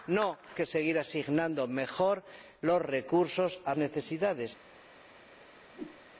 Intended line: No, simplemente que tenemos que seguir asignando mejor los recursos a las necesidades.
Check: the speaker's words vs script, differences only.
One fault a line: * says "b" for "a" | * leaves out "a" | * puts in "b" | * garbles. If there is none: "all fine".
* leaves out "simplemente"
* leaves out "tenemos que"
* leaves out "las"